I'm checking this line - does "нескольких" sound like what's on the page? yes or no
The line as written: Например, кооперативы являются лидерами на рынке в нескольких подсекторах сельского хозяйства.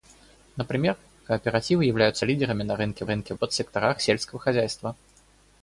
no